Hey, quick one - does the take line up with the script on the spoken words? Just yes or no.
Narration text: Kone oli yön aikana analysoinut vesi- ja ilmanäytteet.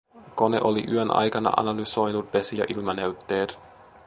yes